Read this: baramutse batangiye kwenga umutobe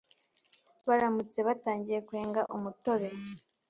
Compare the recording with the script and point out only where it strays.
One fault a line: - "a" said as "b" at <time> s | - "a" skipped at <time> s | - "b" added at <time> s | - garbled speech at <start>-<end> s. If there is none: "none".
none